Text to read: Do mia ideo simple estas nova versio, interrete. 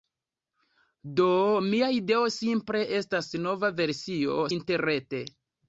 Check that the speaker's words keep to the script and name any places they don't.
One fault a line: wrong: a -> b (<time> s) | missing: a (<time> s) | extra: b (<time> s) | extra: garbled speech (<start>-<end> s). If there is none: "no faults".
no faults